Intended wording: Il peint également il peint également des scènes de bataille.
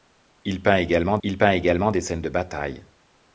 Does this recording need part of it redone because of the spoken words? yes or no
no